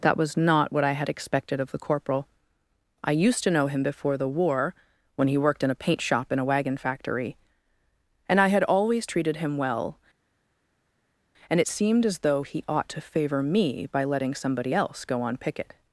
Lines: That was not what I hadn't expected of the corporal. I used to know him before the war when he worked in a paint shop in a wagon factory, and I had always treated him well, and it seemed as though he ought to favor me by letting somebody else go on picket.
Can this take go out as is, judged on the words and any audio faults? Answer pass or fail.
fail